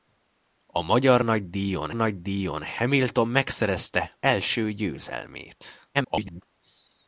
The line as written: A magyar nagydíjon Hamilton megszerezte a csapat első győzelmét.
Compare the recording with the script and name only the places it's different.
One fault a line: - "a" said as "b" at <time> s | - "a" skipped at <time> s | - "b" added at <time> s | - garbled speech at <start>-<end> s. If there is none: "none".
- "nagydíjon" added at 1.9 s
- "a csapat" skipped at 4.2 s
- garbled speech at 5.9-6.4 s